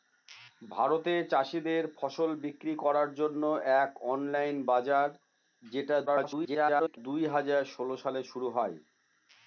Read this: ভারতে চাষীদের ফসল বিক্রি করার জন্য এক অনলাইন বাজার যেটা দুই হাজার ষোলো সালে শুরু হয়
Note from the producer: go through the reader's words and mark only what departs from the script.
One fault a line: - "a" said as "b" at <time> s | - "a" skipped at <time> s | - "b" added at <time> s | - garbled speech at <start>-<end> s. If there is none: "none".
- garbled speech at 6.1-7.0 s